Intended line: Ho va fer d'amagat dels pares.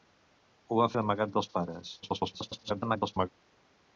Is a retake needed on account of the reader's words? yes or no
yes